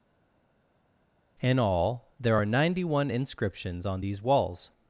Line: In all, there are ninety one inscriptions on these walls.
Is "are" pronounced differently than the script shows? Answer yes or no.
no